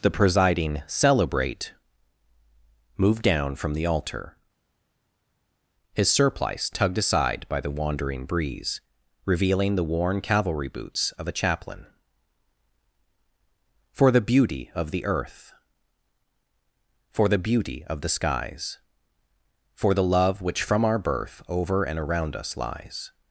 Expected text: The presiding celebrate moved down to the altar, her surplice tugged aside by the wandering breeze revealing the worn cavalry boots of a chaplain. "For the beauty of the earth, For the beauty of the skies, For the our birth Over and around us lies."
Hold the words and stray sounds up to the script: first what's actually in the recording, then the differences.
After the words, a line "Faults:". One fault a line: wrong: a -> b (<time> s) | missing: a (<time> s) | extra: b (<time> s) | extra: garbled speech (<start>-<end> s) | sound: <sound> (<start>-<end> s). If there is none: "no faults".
The presiding celebrate moved down from the altar, his surplice tugged aside by the wandering breeze revealing the worn cavalry boots of a chaplain. "For the beauty of the earth, For the beauty of the skies, For the love which from our birth Over and around us lies."
Faults:
wrong: to -> from (3.5 s)
wrong: her -> his (5.9 s)
extra: love which from (20.0 s)